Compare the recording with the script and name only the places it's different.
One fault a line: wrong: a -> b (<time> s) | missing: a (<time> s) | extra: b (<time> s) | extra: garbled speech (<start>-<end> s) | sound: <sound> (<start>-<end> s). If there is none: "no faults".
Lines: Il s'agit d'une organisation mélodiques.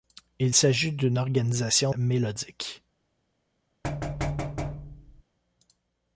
sound: thud (3.8-5.2 s)